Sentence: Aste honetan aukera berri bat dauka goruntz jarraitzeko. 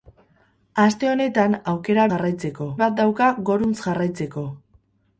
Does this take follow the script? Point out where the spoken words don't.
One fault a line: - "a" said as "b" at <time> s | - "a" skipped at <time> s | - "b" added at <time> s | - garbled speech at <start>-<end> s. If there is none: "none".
- "berri" said as "jarraitzeko" at 2.1 s